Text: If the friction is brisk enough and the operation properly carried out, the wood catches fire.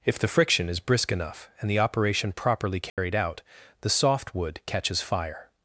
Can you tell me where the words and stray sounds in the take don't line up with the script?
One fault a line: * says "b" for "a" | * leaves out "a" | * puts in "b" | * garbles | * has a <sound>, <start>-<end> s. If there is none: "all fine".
* has a dropout, 2.9-3.0 s
* puts in "soft"